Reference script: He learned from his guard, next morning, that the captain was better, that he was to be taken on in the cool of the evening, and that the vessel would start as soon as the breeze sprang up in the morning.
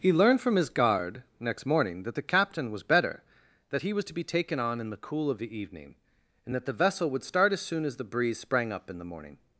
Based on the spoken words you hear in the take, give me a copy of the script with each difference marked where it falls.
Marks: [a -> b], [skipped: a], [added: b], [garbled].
He learned from his guard, next morning, that the captain was better, that he was to be taken on in the cool of the evening, and that the vessel would start as soon as the breeze sprang up in the morning.